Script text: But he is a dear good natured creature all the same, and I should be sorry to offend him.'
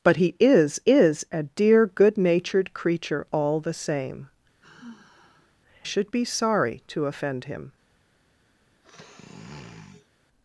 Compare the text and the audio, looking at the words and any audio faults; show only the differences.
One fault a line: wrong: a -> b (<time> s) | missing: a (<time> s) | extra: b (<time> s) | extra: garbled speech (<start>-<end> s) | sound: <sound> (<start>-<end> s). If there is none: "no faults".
extra: is (0.9 s)
missing: and I (4.3 s)
sound: sigh (4.6-5.6 s)
sound: sniff (8.8-10.1 s)